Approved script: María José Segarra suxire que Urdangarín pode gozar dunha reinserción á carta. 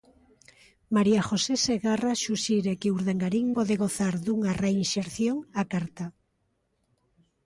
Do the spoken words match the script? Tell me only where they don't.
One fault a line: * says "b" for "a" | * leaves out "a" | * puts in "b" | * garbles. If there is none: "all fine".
all fine